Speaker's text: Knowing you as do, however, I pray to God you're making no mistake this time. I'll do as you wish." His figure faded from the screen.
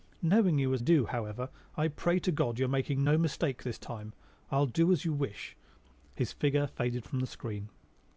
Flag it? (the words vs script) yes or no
no